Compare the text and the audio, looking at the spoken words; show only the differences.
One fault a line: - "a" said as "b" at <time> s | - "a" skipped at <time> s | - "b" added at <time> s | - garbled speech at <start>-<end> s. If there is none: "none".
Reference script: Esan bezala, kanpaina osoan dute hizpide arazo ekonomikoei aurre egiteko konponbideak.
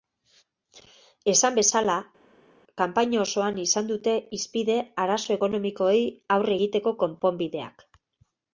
- "izan" added at 3.7 s